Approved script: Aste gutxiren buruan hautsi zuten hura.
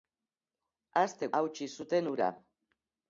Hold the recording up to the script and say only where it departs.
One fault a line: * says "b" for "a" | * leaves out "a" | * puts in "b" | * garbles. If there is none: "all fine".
* leaves out "gutxiren buruan"